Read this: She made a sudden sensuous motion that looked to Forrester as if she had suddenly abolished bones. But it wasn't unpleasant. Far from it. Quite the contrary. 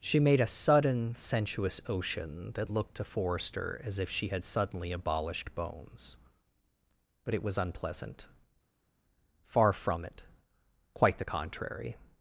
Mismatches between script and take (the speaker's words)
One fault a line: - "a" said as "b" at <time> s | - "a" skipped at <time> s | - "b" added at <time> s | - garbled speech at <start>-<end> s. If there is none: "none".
- "motion" said as "ocean" at 1.9 s
- "wasn't" said as "was" at 7.4 s